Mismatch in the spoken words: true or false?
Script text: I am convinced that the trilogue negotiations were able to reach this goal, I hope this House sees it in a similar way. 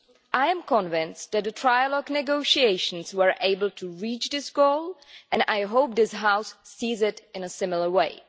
true